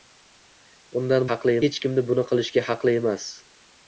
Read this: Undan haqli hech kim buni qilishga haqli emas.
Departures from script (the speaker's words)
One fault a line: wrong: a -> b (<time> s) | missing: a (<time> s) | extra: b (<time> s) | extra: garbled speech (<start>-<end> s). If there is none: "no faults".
no faults